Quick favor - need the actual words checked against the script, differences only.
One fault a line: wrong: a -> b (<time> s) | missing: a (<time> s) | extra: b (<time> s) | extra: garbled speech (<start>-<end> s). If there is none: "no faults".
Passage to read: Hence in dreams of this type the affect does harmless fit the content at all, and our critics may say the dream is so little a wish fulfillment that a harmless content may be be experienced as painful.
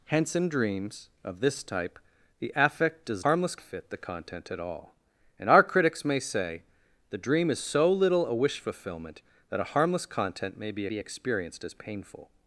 no faults